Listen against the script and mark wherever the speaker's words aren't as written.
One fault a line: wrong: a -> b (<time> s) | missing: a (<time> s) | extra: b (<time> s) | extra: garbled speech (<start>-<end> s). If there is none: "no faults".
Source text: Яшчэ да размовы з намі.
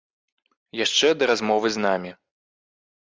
no faults